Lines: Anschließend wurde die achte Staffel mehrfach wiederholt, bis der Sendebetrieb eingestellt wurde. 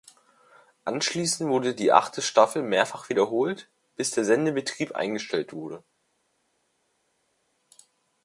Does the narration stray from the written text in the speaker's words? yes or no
no